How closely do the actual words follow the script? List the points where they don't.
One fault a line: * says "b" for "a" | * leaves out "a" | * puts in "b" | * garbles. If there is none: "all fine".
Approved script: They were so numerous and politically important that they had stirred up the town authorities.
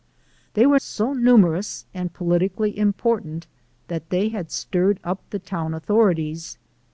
all fine